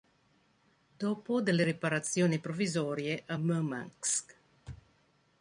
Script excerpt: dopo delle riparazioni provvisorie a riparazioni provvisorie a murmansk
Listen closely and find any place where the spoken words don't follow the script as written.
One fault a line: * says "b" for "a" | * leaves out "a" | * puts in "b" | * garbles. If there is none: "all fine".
* leaves out "riparazioni provvisorie a"